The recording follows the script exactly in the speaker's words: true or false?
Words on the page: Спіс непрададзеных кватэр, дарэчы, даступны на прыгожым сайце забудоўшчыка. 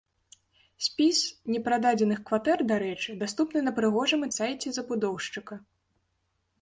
true